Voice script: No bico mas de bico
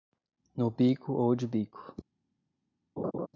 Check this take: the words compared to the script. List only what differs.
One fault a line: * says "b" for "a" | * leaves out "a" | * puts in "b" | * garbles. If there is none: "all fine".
* says "ou" for "mas"